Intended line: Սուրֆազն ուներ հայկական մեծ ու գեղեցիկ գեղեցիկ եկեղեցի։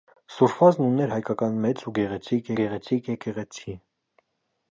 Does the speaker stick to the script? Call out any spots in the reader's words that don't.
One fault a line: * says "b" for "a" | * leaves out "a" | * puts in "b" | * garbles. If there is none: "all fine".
all fine